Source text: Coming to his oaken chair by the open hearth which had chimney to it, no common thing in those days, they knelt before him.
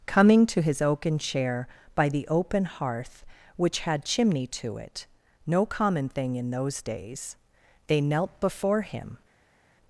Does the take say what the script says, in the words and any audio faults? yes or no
yes